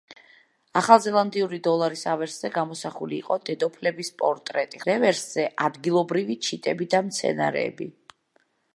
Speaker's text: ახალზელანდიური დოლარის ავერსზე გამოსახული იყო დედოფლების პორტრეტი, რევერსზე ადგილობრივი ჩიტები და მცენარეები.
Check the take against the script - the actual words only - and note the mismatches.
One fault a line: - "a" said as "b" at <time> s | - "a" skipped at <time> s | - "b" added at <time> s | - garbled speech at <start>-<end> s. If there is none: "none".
none